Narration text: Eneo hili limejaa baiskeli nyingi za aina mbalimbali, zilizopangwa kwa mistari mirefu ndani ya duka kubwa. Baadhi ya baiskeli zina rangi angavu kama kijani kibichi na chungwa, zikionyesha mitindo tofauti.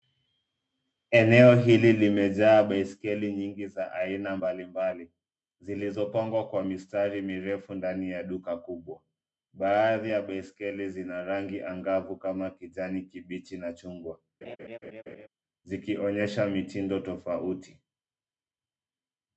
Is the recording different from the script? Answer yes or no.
no